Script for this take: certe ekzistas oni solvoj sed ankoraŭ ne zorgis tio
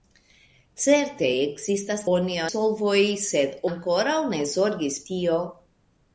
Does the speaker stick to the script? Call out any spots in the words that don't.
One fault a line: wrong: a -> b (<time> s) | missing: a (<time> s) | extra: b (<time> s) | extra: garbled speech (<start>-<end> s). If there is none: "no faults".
no faults